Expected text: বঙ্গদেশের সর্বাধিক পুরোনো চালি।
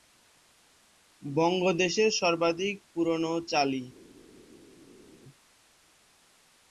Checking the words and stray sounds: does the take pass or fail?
pass